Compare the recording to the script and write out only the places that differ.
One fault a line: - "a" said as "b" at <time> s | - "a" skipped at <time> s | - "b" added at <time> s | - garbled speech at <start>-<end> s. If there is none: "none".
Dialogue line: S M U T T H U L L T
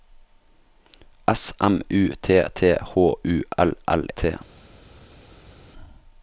none